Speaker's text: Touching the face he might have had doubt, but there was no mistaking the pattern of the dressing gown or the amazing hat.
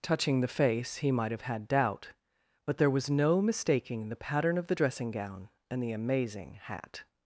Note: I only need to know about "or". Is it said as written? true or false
false